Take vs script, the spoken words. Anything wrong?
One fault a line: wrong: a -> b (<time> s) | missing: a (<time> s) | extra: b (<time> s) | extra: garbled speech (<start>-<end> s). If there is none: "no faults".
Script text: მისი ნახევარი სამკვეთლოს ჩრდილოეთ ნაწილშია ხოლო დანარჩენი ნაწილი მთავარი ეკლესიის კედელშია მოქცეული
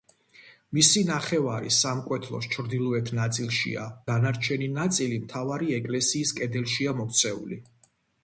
missing: ხოლო (3.9 s)